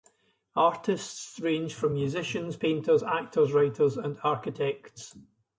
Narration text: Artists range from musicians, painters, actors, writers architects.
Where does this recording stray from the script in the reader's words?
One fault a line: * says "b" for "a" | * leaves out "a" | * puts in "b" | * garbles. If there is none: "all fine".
* puts in "and"